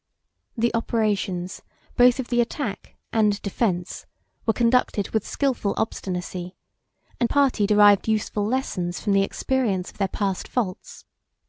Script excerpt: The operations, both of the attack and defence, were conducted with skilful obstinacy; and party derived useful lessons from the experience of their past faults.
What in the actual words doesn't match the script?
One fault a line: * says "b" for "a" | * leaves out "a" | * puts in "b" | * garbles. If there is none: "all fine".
all fine